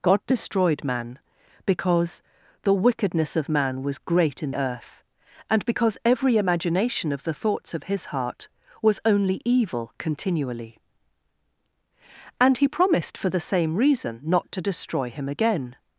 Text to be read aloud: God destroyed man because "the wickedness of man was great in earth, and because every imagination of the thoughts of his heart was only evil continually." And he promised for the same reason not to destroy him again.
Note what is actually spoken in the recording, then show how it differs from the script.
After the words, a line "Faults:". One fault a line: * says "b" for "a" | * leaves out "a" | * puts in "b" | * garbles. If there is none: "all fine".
God destroyed man because "the wickedness of man was great in earth, and because every imagination of the thoughts of his heart was only evil continually." And he promised for the same reason not to destroy him again.
Faults:
all fine